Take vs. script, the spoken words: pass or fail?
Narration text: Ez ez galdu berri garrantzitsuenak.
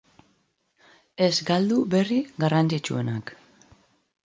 fail